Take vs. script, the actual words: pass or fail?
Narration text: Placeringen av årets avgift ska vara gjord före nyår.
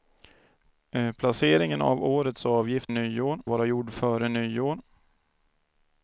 fail